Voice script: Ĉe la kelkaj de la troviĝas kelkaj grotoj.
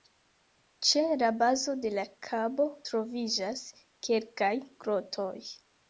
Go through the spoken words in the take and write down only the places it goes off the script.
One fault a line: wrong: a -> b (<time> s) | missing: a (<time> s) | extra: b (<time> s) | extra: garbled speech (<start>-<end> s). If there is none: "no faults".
wrong: kelkaj -> bazo (1.4 s)
extra: kabo (2.3 s)